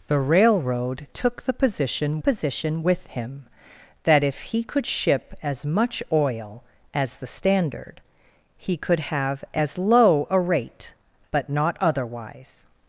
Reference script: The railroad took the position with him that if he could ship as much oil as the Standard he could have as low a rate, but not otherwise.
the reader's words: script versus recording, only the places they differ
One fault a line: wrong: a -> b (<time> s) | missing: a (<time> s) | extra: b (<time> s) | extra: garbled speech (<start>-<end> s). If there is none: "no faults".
extra: position (2.2 s)